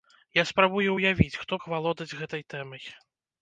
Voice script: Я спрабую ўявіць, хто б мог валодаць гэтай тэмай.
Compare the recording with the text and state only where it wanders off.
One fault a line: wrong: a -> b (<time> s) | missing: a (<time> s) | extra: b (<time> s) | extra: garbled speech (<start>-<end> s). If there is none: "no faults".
missing: б (1.5 s)